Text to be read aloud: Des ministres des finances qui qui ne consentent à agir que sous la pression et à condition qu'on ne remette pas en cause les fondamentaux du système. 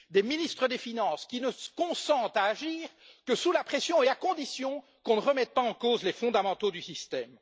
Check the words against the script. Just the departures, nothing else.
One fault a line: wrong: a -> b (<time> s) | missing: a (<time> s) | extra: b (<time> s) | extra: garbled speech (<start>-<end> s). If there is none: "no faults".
missing: qui (1.4 s)